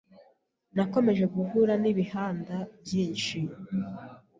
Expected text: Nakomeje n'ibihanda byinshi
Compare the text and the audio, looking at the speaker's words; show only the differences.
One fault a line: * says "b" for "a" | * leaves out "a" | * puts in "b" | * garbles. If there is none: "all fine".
* puts in "guhura"